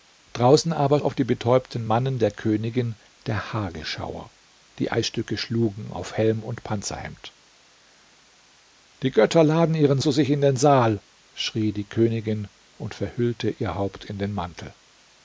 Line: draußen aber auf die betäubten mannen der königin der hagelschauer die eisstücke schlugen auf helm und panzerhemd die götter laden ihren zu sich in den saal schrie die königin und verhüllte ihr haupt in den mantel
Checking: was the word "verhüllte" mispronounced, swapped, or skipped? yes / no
no